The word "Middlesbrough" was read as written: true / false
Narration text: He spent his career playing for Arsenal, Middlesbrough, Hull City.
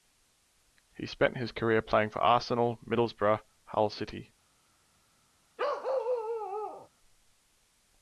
true